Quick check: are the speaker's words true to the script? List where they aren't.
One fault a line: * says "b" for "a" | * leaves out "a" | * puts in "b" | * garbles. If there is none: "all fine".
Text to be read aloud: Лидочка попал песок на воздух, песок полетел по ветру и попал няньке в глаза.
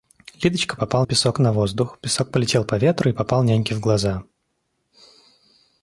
all fine